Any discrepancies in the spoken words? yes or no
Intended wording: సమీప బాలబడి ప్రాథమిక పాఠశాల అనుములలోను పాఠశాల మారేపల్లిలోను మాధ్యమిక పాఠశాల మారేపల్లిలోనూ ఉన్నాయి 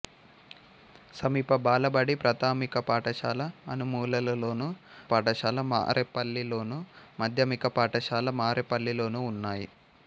no